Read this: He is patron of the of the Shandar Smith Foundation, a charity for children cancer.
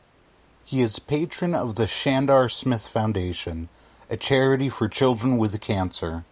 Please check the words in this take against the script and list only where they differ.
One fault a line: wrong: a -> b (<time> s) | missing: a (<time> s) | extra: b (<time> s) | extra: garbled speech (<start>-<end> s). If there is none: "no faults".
missing: of the (1.9 s)
extra: with (5.4 s)